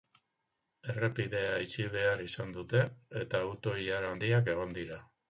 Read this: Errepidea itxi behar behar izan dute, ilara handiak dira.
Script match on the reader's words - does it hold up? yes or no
no